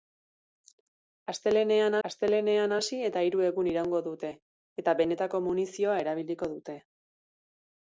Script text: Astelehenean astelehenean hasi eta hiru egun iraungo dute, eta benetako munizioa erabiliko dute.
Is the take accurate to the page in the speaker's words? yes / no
yes